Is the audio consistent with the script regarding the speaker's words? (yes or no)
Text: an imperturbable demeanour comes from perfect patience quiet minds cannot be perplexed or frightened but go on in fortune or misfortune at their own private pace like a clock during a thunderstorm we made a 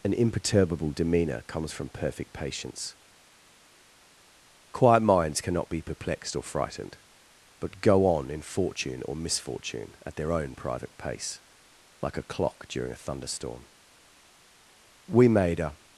yes